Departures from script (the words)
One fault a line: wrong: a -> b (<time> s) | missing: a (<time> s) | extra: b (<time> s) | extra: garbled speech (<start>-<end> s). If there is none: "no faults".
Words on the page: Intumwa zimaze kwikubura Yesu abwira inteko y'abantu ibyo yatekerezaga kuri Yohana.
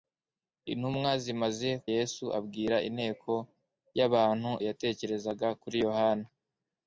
missing: kwikubura (1.7 s)
missing: ibyo (4.5 s)